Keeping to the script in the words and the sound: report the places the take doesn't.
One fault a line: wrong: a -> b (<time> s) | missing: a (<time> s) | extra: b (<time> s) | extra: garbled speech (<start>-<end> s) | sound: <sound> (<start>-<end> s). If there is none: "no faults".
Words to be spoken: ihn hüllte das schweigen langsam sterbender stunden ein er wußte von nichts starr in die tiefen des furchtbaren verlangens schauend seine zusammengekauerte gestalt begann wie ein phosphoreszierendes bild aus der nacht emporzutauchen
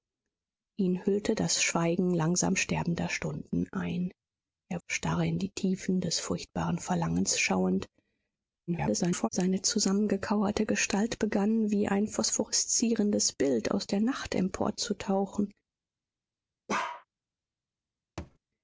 missing: wußte von nichts (4.8 s)
extra: garbled speech (8.7-9.3 s)
sound: bark (16.7-17.0 s)
sound: thud (18.2-18.4 s)